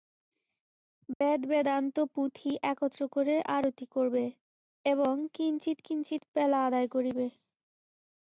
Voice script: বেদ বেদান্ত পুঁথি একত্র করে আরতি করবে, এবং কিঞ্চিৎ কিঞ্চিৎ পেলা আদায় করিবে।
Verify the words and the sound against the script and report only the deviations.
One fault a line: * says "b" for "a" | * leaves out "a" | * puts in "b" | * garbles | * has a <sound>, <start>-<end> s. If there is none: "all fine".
* has a dropout, 1.1-1.2 s